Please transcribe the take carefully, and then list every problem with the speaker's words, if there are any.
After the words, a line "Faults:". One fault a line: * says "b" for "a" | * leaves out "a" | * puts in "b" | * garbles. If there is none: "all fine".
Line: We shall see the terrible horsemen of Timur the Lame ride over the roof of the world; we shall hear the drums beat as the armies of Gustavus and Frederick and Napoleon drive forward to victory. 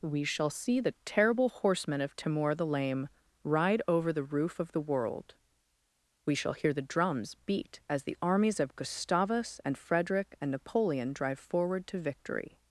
We shall see the terrible horsemen of Timur the Lame ride over the roof of the world; we shall hear the drums beat as the armies of Gustavus and Frederick and Napoleon drive forward to victory.
Faults:
all fine